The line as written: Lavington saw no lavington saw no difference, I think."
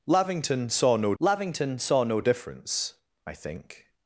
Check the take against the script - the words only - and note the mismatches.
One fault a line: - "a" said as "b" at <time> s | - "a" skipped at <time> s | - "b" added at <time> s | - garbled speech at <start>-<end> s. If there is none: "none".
none